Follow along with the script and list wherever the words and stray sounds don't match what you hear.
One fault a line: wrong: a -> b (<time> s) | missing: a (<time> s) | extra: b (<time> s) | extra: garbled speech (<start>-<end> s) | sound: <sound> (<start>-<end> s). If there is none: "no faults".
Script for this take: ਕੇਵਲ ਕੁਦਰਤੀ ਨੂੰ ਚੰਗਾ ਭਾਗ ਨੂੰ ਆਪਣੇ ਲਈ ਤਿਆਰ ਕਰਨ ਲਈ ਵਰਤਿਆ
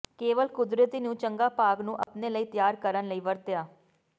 sound: dropout (2.0-2.1 s)